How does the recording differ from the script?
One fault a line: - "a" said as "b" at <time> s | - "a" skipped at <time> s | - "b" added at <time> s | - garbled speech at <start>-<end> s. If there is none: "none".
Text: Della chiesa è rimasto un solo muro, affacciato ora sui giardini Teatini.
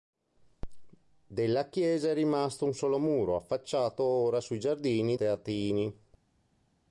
none